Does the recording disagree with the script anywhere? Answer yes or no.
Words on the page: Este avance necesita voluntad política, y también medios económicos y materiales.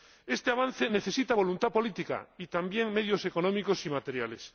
no